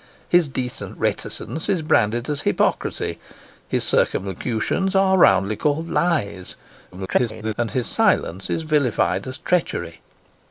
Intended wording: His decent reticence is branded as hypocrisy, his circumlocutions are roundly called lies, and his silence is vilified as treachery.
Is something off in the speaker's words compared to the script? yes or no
yes